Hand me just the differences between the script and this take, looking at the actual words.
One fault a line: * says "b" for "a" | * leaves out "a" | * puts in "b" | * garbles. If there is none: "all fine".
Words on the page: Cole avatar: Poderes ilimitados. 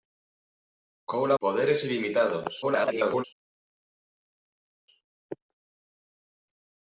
* leaves out "avatar"
* garbles